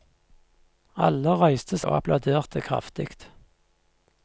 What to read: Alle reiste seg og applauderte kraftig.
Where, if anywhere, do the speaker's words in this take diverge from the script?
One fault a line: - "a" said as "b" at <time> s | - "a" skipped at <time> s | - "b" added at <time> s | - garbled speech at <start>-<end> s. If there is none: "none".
- "seg" skipped at 1.8 s